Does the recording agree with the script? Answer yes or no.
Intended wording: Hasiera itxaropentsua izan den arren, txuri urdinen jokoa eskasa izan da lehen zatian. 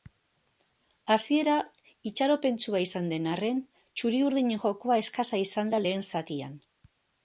yes